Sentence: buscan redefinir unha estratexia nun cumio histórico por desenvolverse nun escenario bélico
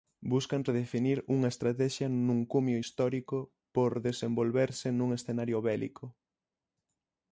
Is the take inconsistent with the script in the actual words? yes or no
no